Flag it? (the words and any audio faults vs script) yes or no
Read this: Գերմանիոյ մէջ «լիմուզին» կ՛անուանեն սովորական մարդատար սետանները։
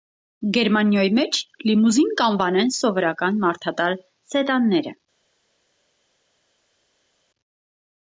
no